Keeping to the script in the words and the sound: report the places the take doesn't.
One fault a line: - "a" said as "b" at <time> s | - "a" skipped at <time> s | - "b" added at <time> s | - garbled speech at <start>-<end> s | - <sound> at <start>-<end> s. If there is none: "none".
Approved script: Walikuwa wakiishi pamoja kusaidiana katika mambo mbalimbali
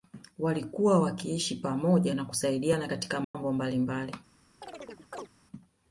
- "na" added at 2.1 s
- dropout at 3.2-3.3 s
- chirp at 4.6-5.3 s